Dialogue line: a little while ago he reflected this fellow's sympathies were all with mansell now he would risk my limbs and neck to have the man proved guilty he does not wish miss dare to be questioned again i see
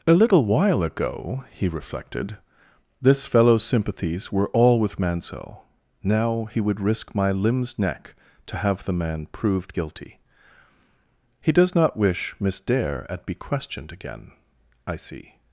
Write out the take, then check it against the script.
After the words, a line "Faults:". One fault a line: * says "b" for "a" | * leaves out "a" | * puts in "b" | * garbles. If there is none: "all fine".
a little while ago he reflected this fellow's sympathies were all with mansell now he would risk my limbs neck to have the man proved guilty he does not wish miss dare at be questioned again i see
Faults:
* leaves out "and"
* says "at" for "to"